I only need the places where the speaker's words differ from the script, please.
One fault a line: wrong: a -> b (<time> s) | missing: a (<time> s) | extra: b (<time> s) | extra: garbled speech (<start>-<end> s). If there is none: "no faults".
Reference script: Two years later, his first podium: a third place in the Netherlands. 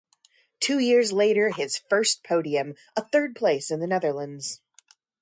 no faults